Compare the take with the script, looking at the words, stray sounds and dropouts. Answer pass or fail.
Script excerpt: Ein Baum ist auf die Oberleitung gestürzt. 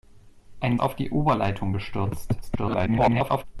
fail